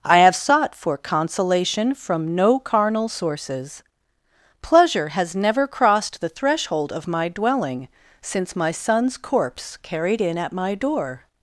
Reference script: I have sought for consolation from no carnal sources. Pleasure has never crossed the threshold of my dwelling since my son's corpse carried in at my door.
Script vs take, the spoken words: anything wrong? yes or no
no